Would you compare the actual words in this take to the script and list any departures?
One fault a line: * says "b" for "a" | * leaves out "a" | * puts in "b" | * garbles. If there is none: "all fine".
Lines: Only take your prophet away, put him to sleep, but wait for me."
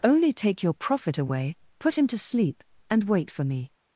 * says "and" for "but"